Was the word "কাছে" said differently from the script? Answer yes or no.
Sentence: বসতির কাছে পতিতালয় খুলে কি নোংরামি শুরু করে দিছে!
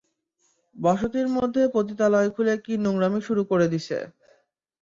yes